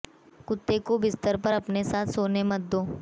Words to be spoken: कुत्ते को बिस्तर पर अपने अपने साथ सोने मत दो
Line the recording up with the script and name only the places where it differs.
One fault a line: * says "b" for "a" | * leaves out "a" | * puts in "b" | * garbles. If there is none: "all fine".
* leaves out "अपने"